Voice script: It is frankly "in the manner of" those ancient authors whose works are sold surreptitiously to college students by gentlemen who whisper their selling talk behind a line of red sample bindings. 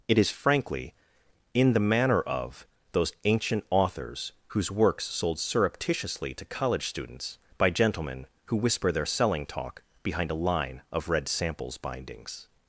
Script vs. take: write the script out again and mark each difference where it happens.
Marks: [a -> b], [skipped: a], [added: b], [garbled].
It is frankly "in the manner of" those ancient authors whose works [skipped: are] sold surreptitiously to college students by gentlemen who whisper their selling talk behind a line of red [sample -> samples] bindings.